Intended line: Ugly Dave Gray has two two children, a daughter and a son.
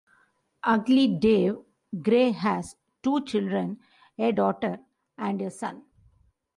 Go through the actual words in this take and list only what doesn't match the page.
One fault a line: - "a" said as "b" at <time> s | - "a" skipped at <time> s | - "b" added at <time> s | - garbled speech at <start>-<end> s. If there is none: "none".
- "two" skipped at 3.2 s